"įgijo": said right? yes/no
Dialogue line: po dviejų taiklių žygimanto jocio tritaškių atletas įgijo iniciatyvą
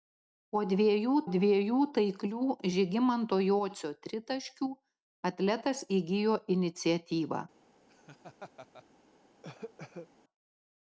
yes